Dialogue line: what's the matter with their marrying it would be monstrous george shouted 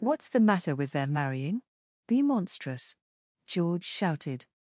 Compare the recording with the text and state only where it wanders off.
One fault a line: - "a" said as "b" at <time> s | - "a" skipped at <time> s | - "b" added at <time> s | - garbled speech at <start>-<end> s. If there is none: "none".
- "it would" skipped at 1.6 s